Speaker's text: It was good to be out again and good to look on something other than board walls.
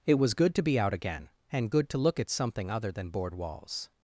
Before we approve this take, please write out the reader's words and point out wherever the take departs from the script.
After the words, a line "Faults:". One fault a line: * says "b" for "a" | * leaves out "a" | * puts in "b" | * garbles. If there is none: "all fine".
It was good to be out again and good to look at something other than board walls.
Faults:
* says "at" for "on"